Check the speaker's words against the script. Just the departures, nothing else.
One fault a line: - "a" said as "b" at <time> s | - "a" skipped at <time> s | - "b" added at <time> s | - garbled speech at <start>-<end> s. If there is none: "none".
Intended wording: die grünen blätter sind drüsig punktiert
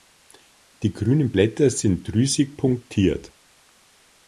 none